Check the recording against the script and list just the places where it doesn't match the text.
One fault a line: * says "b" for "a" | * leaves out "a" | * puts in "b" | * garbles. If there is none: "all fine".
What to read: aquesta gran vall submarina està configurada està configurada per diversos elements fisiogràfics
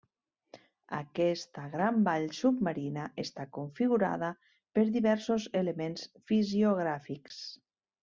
* leaves out "està configurada"